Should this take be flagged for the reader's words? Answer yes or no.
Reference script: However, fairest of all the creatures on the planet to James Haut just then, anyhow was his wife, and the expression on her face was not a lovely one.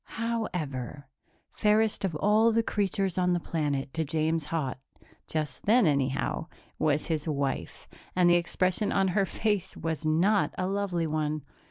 no